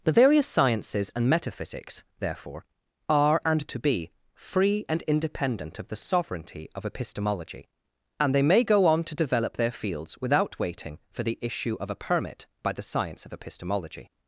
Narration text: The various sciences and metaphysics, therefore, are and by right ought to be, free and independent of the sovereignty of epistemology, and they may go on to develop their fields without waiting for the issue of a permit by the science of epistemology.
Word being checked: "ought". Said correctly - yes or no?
no